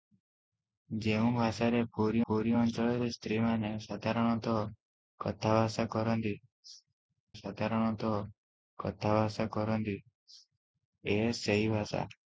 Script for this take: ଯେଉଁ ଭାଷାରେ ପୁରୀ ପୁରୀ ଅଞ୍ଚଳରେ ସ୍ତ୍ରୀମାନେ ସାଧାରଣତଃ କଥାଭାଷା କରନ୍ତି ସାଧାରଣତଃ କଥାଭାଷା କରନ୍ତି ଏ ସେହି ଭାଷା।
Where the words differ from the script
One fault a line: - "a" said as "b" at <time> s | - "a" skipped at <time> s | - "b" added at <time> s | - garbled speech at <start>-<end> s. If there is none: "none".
none